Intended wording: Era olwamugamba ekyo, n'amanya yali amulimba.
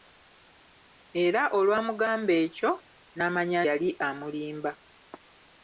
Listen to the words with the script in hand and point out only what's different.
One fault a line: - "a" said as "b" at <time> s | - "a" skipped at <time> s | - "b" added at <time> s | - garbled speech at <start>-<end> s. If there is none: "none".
none